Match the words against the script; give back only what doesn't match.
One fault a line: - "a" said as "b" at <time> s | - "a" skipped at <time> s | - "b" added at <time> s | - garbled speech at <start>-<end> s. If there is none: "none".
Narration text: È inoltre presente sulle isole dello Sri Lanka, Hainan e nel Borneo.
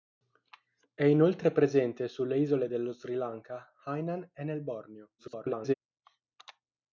- garbled speech at 5.2-5.7 s